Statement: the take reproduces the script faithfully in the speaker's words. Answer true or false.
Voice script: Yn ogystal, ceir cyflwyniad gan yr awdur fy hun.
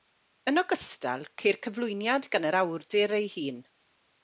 false